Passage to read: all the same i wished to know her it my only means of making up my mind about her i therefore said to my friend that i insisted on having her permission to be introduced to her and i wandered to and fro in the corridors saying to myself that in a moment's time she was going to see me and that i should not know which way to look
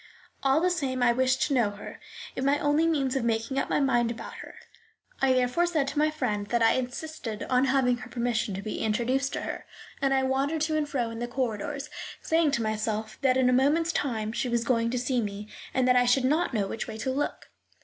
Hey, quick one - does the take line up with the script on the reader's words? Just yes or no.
yes